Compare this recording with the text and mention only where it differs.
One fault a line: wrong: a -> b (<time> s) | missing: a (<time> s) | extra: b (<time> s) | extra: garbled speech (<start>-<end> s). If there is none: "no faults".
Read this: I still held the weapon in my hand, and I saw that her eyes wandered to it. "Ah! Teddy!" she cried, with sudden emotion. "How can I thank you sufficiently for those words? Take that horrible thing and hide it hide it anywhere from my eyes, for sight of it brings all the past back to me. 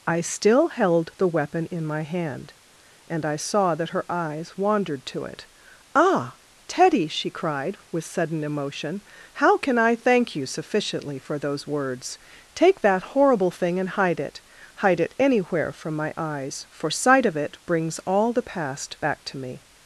no faults